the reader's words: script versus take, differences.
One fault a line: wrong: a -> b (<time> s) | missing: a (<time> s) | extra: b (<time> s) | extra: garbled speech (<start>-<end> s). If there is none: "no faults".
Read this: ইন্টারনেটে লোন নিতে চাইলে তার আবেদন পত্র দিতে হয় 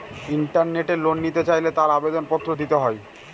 no faults